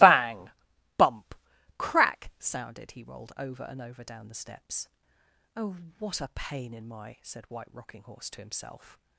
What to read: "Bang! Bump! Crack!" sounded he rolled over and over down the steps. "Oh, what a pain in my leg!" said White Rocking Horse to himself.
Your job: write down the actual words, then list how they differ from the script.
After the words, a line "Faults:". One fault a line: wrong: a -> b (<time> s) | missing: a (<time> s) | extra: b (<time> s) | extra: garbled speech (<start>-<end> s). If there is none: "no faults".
"Bang! Bump! Crack!" sounded he rolled over and over down the steps. "Oh, what a pain in my!" said White Rocking Horse to himself.
Faults:
missing: leg (7.2 s)